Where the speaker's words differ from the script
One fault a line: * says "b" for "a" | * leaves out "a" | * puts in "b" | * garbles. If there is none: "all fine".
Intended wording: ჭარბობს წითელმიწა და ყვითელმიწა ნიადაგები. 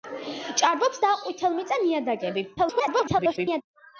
* leaves out "წითელმიწა"
* garbles